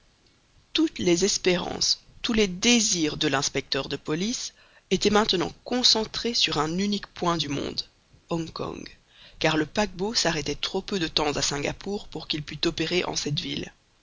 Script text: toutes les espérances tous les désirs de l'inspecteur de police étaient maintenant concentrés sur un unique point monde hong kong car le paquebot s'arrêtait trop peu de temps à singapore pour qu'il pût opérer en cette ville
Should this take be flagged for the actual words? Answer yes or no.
yes